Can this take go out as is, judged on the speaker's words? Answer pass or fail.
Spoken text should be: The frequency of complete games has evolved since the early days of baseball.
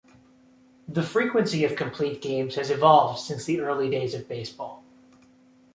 pass